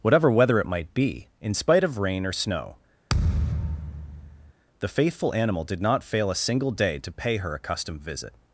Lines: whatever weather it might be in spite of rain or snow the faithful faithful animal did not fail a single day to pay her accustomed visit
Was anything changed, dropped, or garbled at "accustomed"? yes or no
no